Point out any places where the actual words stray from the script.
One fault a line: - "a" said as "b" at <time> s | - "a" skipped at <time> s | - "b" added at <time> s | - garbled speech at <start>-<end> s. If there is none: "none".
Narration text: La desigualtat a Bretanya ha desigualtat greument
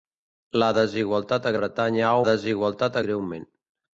none